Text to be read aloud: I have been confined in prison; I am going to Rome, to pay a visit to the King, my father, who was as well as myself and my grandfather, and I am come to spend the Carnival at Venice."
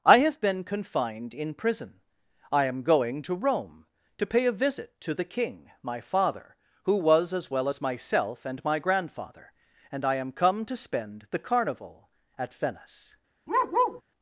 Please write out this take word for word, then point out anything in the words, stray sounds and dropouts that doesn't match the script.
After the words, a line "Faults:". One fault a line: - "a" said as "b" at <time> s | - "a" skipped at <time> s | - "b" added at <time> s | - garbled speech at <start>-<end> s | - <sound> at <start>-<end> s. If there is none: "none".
I have been confined in prison; I am going to Rome, to pay a visit to the King, my father, who was as well as myself and my grandfather, and I am come to spend the Carnival at Venice."
Faults:
- bark at 13.5-14.0 s